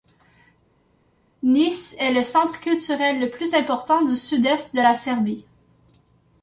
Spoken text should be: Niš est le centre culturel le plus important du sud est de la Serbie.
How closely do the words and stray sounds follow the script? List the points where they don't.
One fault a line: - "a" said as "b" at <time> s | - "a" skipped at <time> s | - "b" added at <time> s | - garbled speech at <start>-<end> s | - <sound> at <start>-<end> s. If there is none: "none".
none